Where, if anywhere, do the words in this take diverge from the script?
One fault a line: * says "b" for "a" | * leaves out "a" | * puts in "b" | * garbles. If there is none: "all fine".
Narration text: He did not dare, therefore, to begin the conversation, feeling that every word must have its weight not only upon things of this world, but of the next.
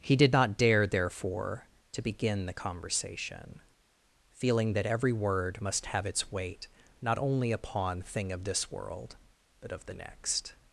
* says "thing" for "things"